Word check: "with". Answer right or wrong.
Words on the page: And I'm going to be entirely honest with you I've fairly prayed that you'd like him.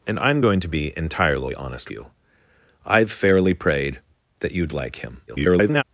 wrong